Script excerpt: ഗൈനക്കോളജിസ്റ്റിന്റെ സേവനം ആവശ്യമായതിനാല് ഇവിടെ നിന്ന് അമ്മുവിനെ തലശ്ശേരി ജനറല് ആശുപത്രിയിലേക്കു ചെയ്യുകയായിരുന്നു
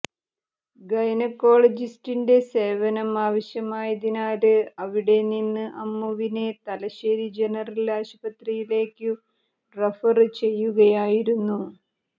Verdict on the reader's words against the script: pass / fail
fail